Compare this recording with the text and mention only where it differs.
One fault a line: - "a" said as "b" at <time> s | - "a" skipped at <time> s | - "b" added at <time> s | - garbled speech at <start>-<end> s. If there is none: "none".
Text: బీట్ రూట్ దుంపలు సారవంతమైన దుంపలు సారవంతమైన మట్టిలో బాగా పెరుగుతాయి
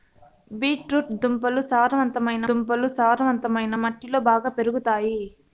none